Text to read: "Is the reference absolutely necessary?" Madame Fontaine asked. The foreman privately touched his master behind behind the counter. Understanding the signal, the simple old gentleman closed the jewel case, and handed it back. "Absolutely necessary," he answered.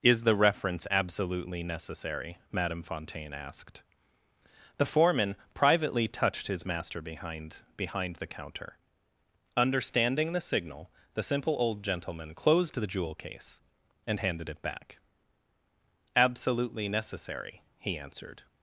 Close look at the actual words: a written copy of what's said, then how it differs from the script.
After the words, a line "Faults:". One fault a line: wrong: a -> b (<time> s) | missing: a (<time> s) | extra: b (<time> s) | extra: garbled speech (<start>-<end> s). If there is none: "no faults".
"Is the reference absolutely necessary?" Madame Fontaine asked. The foreman privately touched his master behind behind the counter. Understanding the signal, the simple old gentleman closed the jewel case, and handed it back. "Absolutely necessary," he answered.
Faults:
no faults